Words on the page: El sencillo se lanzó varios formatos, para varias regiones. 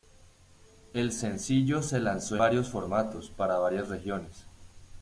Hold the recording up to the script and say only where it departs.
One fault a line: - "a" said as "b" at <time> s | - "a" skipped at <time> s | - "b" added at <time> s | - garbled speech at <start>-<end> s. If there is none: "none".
none